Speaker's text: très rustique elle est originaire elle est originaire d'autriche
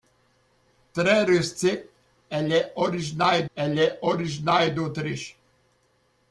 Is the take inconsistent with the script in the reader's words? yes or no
no